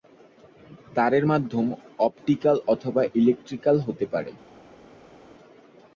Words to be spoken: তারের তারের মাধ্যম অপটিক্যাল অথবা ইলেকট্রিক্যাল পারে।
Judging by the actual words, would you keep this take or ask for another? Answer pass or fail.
fail